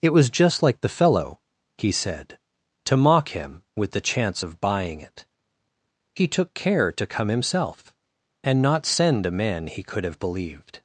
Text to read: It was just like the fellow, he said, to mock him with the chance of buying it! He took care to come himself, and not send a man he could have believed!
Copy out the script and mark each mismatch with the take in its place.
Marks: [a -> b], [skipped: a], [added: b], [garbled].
It was just like the fellow, he said, to mock him with the chance of buying it! He took care to come himself, and not send a man he could have believed!